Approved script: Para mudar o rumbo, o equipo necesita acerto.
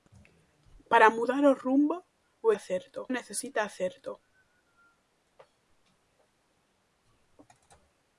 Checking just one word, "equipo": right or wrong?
wrong